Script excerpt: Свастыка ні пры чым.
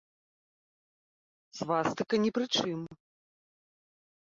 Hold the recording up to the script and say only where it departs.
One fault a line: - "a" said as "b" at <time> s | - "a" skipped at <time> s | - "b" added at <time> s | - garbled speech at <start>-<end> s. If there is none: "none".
none